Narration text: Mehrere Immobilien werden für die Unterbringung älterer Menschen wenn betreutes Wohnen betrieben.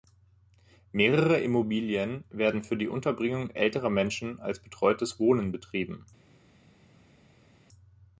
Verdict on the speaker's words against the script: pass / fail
fail